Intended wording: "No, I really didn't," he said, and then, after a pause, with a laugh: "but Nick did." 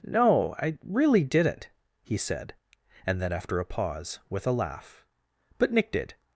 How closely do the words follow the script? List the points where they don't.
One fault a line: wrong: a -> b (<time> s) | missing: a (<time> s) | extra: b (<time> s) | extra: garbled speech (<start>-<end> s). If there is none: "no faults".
no faults